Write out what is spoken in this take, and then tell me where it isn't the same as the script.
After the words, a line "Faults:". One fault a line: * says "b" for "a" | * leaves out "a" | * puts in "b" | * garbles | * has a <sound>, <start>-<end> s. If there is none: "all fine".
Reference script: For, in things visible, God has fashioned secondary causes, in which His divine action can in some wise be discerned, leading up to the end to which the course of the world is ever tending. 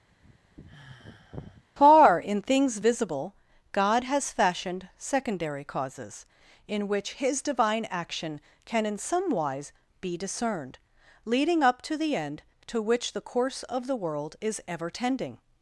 Far, in things visible, God has fashioned secondary causes, in which His divine action can in some wise be discerned, leading up to the end to which the course of the world is ever tending.
Faults:
* has a sigh, 0.1-1.6 s
* says "Far" for "For"